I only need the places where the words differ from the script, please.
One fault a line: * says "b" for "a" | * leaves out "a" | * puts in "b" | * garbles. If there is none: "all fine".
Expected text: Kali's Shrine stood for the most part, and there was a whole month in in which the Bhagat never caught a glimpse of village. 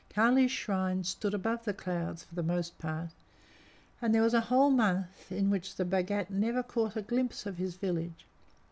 * puts in "above the clouds"
* leaves out "in"
* puts in "his"